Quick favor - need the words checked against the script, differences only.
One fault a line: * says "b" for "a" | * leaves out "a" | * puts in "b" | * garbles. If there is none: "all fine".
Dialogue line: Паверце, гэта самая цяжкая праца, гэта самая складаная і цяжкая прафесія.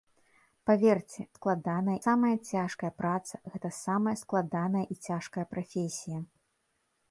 * says "складаная" for "гэта"